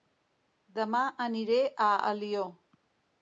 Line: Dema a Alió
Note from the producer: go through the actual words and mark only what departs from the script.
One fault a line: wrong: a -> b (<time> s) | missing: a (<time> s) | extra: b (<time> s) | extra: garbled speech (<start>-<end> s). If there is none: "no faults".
extra: aniré (1.3 s)